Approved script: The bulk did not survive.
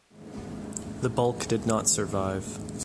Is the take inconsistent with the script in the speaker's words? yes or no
no